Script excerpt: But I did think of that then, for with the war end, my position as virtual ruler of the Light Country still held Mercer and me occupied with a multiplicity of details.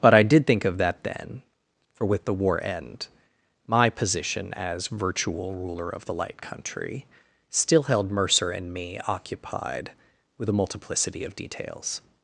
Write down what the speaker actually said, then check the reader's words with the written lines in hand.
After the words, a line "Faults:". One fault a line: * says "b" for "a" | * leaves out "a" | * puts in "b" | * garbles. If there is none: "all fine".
But I did think of that then, for with the war end, my position as virtual ruler of the Light Country still held Mercer and me occupied with a multiplicity of details.
Faults:
all fine